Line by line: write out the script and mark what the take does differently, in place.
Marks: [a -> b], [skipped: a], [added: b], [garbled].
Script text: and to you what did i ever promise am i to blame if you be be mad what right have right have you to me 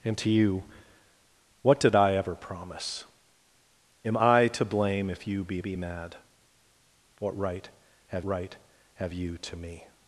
and to you what did i ever promise am i to blame if you be be mad what right have right have you to me